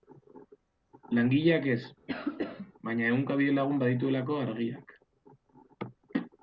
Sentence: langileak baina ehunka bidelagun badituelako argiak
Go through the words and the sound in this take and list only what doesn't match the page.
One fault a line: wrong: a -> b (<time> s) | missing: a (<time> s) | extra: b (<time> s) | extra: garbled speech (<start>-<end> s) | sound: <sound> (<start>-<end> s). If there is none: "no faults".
extra: ez (1.7 s)
sound: cough (2.1-2.7 s)